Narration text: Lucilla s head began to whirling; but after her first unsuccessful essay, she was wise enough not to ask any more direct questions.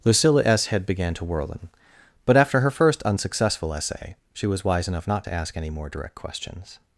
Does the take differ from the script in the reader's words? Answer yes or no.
no